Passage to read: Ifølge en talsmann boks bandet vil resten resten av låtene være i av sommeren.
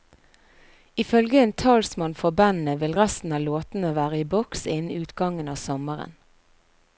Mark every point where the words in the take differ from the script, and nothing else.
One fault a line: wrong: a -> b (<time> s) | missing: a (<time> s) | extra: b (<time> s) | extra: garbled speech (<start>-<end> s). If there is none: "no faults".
wrong: boks -> for (2.2 s)
missing: resten (3.4 s)
extra: boks innen utgangen (4.4 s)